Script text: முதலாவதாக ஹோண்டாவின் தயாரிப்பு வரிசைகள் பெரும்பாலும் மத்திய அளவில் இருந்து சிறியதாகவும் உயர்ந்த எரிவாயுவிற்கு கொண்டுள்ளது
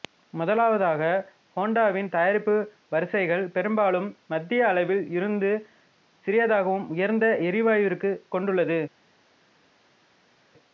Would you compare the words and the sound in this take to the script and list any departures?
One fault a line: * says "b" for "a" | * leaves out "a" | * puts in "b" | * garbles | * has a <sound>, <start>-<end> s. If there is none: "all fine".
all fine